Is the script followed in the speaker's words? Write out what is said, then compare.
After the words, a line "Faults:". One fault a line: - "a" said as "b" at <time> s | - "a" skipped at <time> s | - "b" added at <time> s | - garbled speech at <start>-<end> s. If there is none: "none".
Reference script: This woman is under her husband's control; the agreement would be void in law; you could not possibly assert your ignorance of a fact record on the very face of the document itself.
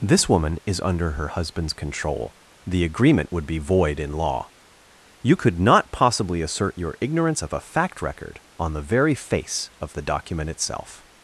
This woman is under her husband's control; the agreement would be void in law; you could not possibly assert your ignorance of a fact record on the very face of the document itself.
Faults:
none